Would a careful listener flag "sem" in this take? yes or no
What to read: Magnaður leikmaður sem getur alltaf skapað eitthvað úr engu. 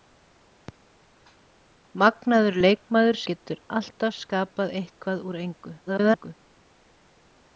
yes